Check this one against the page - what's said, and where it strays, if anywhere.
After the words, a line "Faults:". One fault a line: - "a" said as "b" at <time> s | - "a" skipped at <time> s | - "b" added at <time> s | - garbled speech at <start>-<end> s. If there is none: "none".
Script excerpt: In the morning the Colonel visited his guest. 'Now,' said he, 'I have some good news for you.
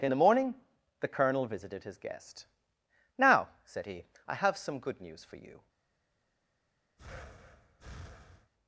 In the morning the Colonel visited his guest. 'Now,' said he, 'I have some good news for you.
Faults:
none